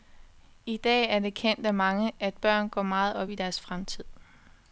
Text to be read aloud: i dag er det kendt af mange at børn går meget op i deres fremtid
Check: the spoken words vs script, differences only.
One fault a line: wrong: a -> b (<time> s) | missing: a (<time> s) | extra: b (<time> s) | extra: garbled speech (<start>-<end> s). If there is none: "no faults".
no faults